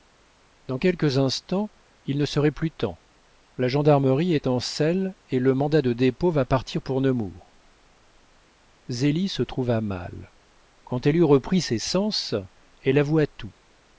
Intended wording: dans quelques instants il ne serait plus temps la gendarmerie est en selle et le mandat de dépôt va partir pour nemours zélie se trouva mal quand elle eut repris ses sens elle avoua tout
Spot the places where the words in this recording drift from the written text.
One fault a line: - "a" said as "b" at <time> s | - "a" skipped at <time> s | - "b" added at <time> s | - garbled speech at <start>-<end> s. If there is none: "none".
none